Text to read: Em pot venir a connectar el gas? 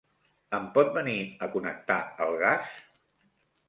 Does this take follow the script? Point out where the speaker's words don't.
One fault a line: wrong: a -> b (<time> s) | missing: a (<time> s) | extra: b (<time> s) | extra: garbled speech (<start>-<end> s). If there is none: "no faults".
no faults